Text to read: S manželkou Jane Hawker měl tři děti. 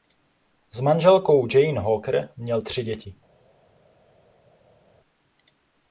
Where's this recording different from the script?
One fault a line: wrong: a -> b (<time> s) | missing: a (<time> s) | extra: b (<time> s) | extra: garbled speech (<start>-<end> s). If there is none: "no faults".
no faults